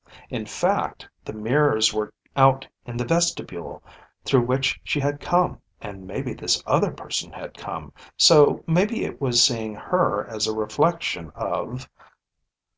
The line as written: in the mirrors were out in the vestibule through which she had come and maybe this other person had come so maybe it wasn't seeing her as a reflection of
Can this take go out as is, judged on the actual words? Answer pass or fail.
fail